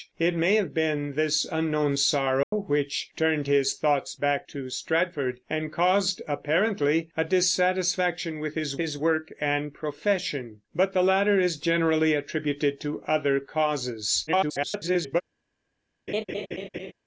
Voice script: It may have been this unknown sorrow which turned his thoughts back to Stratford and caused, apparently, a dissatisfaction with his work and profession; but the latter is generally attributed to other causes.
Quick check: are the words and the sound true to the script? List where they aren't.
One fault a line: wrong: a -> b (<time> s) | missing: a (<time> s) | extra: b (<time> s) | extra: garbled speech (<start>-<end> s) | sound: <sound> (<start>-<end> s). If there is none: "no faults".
sound: dropout (2.4-2.5 s)
extra: his (8.8 s)
extra: garbled speech (14.3-15.2 s)
sound: laugh (16.1-16.9 s)